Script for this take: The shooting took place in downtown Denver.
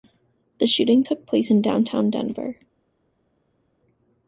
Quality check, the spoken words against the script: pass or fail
pass